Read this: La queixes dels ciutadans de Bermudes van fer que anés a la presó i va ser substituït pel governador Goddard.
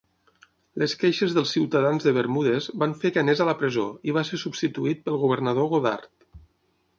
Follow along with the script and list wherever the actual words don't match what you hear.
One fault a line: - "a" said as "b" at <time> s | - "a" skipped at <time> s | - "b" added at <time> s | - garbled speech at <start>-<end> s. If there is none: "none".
- "La" said as "Les" at 0.8 s